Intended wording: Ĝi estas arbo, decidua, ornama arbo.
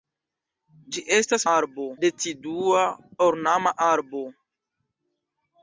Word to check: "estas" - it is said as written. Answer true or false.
true